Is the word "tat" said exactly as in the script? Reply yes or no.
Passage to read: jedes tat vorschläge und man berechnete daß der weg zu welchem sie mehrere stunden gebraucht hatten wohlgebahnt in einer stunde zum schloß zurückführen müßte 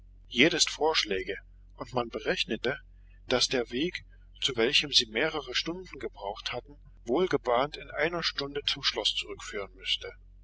no